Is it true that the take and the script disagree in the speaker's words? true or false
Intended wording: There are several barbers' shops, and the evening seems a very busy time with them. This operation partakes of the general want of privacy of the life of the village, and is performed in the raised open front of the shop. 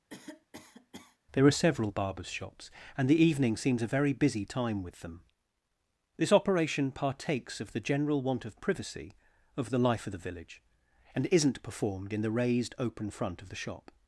true